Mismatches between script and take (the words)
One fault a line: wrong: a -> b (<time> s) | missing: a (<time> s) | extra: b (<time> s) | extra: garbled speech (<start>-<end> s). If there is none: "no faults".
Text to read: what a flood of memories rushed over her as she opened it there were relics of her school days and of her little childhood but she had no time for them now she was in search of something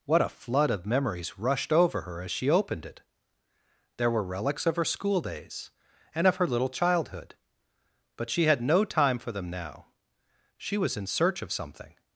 no faults